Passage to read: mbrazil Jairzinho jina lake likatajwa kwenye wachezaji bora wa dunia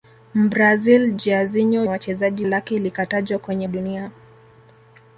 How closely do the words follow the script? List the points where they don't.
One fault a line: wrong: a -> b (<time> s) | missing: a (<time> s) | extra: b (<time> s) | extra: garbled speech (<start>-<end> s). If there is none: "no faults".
wrong: jina -> wachezaji (1.9 s)
missing: wachezaji bora wa (3.7 s)